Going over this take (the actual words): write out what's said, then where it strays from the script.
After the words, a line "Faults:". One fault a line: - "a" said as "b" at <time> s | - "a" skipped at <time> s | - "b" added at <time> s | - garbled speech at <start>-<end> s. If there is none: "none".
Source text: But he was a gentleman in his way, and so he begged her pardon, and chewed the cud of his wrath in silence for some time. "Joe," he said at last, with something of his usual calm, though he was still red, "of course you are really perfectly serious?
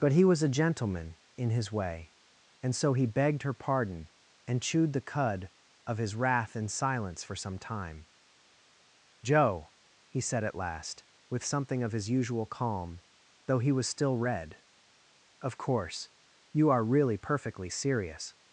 But he was a gentleman in his way, and so he begged her pardon, and chewed the cud of his wrath in silence for some time. "Joe," he said at last, with something of his usual calm, though he was still red, "of course you are really perfectly serious?
Faults:
none